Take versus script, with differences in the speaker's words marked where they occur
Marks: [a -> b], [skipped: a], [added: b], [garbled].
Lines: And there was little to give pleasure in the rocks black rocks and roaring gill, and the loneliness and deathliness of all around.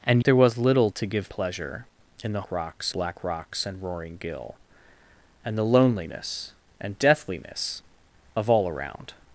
And there was little to give pleasure in the rocks black rocks and roaring gill, and the loneliness and deathliness of all around.